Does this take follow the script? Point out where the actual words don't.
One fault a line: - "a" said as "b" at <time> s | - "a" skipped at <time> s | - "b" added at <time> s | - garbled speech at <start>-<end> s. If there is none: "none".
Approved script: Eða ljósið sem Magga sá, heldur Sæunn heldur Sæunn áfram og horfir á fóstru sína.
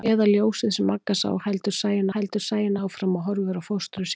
none